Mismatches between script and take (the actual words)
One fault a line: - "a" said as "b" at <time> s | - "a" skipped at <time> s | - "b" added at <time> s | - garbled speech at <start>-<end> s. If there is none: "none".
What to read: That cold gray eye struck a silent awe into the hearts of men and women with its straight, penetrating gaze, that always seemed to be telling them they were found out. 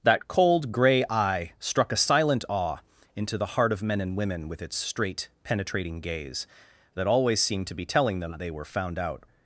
- "hearts" said as "heart" at 3.5 s